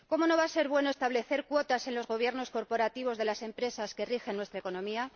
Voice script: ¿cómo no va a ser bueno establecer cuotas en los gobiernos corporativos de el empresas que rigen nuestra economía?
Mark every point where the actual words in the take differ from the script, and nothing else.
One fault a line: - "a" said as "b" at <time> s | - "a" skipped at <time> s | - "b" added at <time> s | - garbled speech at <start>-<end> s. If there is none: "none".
- "el" said as "las" at 3.3 s